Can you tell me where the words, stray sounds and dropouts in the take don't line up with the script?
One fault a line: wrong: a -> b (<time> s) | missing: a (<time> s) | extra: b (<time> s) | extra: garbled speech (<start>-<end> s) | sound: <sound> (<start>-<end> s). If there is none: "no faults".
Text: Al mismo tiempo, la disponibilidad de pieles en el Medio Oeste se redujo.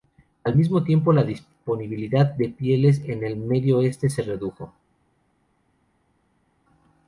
no faults